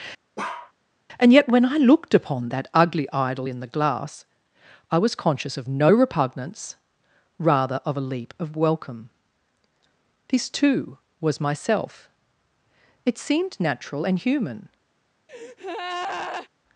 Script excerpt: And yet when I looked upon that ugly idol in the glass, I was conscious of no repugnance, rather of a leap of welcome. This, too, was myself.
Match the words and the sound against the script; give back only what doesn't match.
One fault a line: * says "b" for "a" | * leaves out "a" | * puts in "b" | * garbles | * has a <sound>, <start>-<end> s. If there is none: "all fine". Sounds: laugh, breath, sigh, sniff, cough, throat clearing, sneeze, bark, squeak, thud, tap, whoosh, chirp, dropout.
* has a bark, 0.4-0.7 s
* puts in "It seemed natural and human"
* has a breath, 15.3-16.5 s